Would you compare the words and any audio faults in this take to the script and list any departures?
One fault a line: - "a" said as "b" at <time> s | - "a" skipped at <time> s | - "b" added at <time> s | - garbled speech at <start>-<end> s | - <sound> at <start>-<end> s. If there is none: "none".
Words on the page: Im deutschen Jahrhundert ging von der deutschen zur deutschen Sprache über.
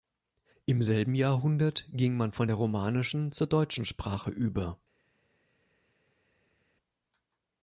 - "deutschen" said as "selben" at 0.8 s
- "man" added at 2.2 s
- "deutschen" said as "romanischen" at 2.6 s